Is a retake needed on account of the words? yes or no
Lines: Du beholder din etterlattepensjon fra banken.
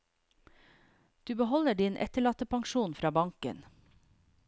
no